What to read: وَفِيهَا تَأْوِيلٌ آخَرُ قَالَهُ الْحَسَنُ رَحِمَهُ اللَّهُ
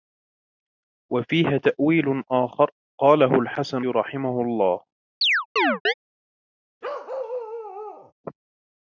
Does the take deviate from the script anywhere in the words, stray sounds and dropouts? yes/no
yes